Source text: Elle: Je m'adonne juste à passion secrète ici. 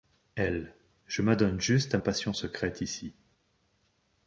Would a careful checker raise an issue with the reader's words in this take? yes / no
no